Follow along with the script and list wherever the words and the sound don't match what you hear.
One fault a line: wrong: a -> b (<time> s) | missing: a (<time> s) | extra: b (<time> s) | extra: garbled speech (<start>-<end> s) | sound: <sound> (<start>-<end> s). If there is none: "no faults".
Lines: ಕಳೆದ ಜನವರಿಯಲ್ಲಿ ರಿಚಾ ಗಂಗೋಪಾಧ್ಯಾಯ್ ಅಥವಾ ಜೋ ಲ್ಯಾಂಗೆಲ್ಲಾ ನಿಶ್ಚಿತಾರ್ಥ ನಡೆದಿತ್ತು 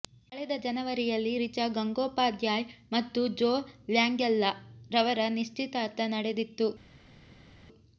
wrong: ಅಥವಾ -> ಮತ್ತು (2.9 s)
extra: ರವರ (4.9 s)